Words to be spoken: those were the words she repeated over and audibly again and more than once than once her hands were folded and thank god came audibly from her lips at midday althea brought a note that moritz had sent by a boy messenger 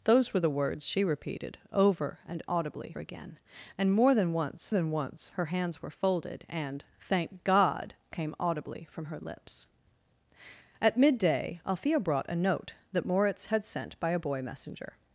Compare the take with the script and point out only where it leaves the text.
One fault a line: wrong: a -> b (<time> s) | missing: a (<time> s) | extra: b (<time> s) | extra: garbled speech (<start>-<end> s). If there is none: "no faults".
no faults